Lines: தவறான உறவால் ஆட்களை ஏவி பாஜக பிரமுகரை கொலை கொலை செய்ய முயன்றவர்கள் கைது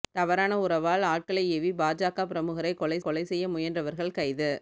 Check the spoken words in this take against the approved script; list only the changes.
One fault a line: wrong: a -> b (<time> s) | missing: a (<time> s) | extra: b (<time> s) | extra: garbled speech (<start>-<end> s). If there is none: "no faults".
no faults